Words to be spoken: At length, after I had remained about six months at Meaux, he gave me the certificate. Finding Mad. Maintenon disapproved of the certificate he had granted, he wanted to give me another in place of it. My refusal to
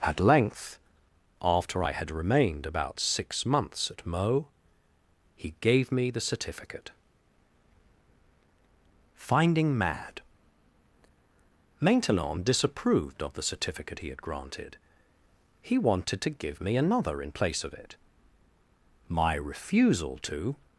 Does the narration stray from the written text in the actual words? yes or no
no